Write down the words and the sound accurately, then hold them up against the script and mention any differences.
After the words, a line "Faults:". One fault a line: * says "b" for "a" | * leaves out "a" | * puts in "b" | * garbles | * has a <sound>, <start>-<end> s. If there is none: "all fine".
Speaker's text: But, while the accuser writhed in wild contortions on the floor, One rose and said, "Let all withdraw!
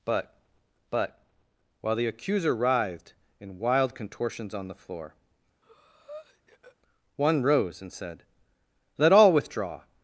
But but, while the accuser writhed in wild contortions on the floor, One rose and said, "Let all withdraw!
Faults:
* puts in "but"
* has a breath, 5.6-6.8 s